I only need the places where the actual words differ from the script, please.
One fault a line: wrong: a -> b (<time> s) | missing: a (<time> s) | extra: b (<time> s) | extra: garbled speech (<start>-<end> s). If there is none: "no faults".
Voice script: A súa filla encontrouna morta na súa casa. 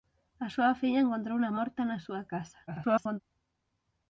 extra: garbled speech (2.7-3.2 s)